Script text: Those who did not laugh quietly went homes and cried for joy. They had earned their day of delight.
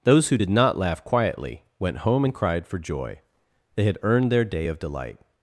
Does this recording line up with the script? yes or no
no